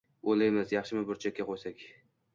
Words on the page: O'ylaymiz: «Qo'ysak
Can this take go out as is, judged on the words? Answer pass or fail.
fail